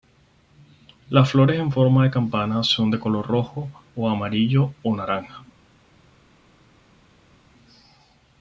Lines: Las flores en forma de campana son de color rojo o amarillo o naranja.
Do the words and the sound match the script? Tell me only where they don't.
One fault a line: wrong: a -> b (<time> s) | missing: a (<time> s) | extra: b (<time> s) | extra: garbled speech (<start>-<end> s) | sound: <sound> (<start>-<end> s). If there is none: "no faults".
no faults